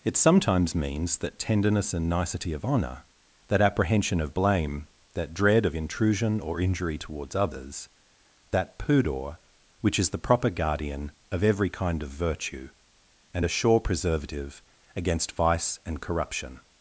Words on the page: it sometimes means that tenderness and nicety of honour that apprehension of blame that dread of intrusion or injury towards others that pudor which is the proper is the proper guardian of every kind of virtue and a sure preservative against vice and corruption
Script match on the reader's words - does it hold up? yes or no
no